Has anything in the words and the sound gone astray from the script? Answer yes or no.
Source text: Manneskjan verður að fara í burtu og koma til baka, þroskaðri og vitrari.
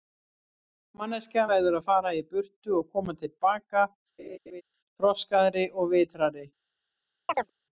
yes